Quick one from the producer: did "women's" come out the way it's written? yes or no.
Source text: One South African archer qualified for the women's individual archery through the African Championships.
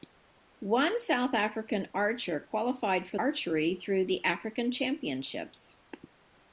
no